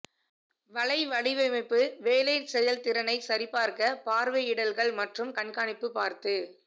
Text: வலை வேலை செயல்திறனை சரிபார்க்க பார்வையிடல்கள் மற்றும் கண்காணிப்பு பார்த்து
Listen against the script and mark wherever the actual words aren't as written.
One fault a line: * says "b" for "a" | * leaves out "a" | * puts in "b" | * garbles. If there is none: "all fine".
* puts in "வடிவமைப்பு"